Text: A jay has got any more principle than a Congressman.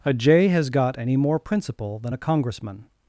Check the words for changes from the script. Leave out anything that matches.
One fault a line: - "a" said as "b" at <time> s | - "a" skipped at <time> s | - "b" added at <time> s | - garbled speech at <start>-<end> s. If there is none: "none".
none